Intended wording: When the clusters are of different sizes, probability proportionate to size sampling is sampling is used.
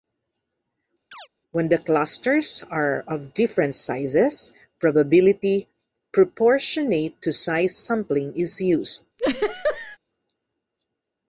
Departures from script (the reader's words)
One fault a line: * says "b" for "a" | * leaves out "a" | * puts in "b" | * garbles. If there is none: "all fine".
* leaves out "sampling is"